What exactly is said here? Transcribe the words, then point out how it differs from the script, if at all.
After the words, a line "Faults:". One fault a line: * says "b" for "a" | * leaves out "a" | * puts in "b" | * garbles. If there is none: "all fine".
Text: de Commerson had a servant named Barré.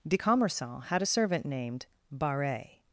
de Commerson had a servant named Barré.
Faults:
all fine